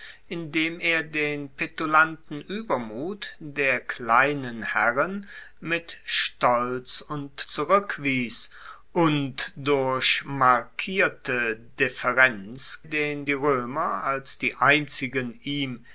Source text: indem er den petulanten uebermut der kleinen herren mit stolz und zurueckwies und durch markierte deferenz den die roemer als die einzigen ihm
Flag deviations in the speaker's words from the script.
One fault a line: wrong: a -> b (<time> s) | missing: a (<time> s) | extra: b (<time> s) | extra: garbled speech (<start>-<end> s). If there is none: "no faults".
no faults